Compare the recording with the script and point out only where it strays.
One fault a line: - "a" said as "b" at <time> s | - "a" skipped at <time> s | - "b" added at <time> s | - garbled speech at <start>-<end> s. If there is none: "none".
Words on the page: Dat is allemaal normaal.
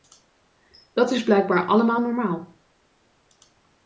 - "blijkbaar" added at 1.2 s